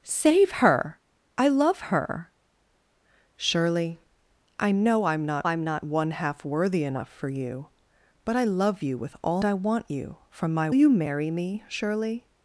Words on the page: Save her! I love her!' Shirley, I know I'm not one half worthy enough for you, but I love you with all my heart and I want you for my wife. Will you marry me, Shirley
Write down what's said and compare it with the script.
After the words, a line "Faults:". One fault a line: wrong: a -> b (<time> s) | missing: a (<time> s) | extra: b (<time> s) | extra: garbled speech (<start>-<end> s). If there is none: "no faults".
Save her! I love her!' Shirley, I know I'm not I'm not one half worthy enough for you, but I love you with all I want you for my you marry me, Shirley
Faults:
extra: I'm not (5.4 s)
missing: my heart and (9.4 s)
missing: wife Will (10.7 s)